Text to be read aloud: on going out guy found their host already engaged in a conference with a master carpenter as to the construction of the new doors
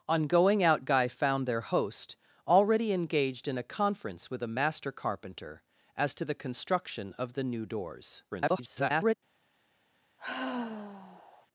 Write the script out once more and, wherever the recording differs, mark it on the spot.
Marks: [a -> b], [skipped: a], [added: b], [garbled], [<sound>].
on going out guy found their host already engaged in a conference with a master carpenter as to the construction of the new doors [garbled] [sigh]